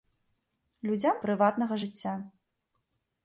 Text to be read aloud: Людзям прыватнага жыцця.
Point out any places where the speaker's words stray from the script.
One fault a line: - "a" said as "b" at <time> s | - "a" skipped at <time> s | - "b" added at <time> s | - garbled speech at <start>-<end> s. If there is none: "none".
none